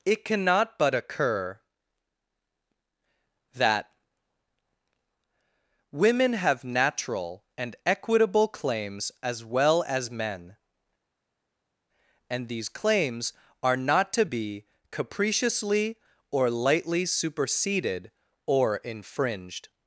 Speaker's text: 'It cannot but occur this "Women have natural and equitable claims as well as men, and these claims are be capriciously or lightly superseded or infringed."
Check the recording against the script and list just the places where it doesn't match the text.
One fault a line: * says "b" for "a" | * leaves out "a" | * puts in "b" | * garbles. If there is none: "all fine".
* says "that" for "this"
* puts in "not to"